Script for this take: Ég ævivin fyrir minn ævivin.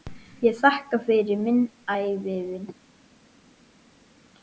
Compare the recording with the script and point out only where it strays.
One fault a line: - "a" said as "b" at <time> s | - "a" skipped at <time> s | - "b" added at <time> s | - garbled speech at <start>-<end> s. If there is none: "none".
- "ævivin" said as "þakka" at 0.6 s